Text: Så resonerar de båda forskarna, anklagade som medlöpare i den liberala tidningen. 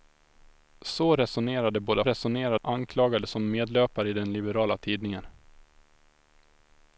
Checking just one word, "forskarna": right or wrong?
wrong